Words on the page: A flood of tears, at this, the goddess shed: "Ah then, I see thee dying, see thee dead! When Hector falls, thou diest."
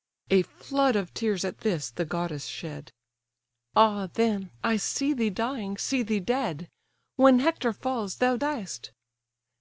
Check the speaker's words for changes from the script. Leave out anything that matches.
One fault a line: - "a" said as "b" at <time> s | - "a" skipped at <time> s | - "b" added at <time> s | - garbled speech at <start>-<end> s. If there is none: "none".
none